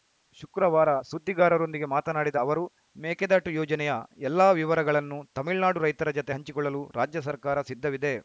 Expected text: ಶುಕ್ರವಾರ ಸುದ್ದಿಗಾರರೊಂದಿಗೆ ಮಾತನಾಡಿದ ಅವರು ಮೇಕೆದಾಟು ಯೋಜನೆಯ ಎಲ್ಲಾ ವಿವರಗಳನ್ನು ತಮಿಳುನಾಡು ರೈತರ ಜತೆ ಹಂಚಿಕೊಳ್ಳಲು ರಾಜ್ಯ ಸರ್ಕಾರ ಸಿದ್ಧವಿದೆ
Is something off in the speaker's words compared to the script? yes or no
no